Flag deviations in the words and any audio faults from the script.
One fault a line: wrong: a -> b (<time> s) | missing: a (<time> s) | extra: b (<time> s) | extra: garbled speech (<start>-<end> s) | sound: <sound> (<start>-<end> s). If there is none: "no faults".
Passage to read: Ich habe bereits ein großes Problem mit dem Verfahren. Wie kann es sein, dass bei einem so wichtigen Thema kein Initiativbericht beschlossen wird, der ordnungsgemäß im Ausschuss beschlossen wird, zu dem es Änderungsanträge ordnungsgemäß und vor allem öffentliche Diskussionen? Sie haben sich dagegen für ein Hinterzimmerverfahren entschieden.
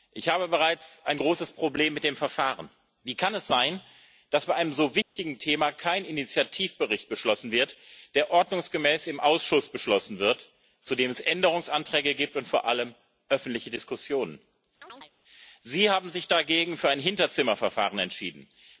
sound: dropout (5.0-5.2 s)
wrong: ordnungsgemäß -> gibt (12.1 s)
sound: chirp (14.8-15.1 s)